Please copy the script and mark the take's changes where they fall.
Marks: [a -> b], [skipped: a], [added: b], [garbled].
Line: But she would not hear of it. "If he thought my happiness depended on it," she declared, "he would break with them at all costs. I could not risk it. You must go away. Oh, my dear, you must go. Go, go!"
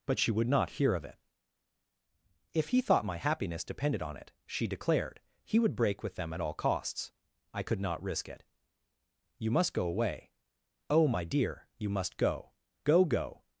But she would not hear of it. "If he thought my happiness depended on it," she declared, "he would break with them at all costs. I could not risk it. You must go away. Oh, my dear, you must go. Go, go!"